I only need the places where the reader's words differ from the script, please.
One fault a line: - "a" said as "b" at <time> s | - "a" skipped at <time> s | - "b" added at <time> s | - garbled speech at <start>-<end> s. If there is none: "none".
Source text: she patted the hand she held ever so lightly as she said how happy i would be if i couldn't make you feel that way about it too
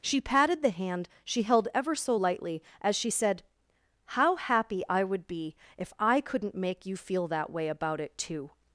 none